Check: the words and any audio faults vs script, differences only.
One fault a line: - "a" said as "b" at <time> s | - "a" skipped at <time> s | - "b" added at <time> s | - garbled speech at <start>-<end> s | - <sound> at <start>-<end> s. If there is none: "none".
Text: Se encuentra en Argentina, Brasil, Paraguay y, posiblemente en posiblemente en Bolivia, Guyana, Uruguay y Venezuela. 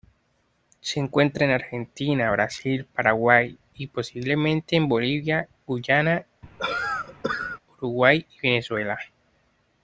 - "posiblemente en" skipped at 4.9 s
- cough at 6.4-7.6 s